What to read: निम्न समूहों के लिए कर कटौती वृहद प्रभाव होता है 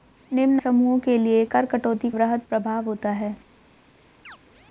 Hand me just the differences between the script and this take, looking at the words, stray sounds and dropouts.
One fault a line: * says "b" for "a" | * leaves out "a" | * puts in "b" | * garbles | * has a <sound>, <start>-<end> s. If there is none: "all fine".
* has a chirp, 4.2-4.4 s